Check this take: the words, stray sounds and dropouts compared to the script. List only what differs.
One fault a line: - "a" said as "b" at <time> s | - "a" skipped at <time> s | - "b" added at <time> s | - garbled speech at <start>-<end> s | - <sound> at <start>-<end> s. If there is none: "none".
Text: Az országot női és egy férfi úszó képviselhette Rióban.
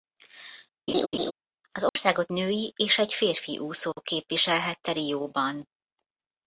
- laugh at 0.9-1.3 s
- dropout at 1.9-2.0 s